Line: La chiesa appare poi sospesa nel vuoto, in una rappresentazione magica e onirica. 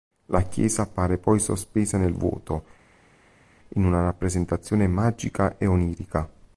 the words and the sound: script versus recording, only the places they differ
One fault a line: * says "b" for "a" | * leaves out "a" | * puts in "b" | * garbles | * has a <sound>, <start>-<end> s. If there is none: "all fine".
all fine